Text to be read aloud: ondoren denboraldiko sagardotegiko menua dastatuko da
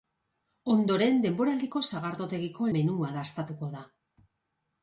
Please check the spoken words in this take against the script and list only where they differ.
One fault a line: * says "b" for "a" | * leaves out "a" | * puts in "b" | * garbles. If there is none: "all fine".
all fine